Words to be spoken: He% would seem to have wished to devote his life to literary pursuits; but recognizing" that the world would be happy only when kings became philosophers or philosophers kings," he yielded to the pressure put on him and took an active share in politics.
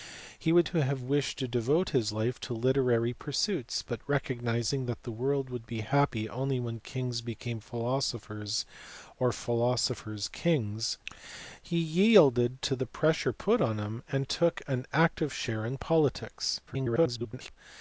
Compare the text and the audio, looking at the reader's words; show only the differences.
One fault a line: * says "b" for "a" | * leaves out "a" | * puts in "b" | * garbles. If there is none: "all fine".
* leaves out "seem"
* garbles